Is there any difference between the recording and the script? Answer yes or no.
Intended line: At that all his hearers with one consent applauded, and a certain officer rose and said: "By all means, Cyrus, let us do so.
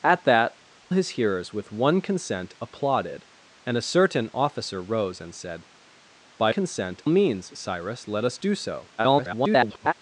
yes